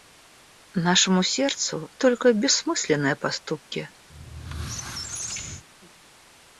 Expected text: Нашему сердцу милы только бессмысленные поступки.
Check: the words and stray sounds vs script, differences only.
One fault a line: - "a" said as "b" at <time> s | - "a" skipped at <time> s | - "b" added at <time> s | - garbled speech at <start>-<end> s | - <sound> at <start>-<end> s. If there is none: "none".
- "милы" skipped at 1.9 s
- squeak at 4.1-5.6 s